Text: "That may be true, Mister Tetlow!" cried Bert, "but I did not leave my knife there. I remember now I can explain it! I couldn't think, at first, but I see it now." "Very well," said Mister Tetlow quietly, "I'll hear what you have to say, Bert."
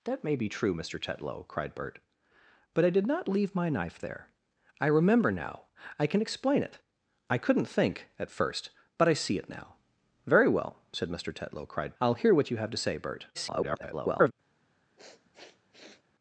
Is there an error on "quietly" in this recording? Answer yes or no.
yes